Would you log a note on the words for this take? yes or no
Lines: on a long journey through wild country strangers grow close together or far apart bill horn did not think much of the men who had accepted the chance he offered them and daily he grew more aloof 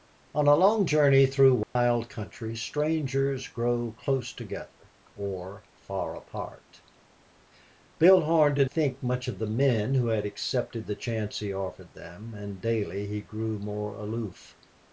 yes